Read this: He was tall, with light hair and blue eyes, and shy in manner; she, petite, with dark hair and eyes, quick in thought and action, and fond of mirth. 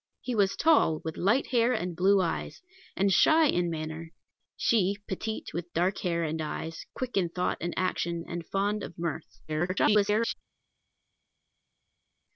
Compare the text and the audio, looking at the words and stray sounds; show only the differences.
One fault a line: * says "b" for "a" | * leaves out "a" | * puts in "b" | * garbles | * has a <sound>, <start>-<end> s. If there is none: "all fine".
* garbles